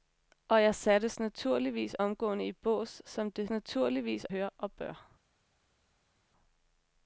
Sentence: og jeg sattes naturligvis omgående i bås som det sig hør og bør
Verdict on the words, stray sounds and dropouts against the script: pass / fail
fail